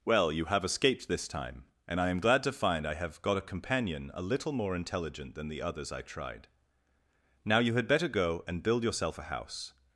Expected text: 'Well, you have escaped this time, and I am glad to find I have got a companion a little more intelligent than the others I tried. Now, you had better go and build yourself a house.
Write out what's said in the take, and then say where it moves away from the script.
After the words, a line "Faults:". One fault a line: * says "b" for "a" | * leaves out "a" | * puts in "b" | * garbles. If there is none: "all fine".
'Well, you have escaped this time, and I am glad to find I have got a companion a little more intelligent than the others I tried. Now, you had better go and build yourself a house.
Faults:
all fine